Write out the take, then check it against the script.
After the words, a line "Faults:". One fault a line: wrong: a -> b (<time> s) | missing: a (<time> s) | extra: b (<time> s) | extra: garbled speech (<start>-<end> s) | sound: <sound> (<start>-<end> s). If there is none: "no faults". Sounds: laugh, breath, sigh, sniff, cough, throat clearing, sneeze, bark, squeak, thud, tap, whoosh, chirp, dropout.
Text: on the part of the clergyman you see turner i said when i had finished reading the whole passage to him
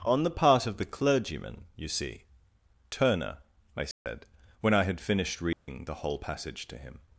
on the part of the clergyman you see turner i said when i had finished reading the whole passage to him
Faults:
sound: dropout (3.9-4.1 s)
sound: dropout (5.5-5.7 s)